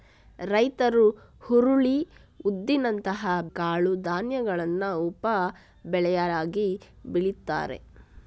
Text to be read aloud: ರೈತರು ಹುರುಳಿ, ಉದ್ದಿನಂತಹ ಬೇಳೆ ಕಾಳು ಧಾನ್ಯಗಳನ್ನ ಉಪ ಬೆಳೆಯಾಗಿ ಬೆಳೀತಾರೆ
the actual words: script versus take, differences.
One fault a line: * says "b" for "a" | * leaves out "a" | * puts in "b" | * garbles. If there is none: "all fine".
* leaves out "ಬೇಳೆ"